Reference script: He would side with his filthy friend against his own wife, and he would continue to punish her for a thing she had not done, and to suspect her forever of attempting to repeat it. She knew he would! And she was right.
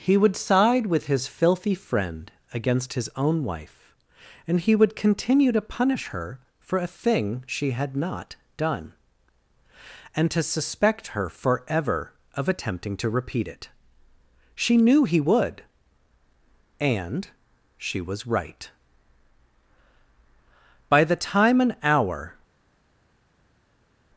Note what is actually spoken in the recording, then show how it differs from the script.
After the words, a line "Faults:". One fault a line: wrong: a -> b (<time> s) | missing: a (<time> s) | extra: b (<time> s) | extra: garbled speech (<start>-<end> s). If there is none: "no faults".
He would side with his filthy friend against his own wife, and he would continue to punish her for a thing she had not done, and to suspect her forever of attempting to repeat it. She knew he would! And she was right. By the time an hour
Faults:
extra: By the time an hour (20.9 s)